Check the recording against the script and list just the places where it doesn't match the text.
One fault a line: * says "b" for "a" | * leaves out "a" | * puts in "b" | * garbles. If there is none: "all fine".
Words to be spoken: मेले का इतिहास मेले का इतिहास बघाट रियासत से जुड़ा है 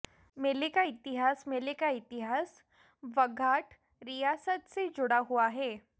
* puts in "हुआ"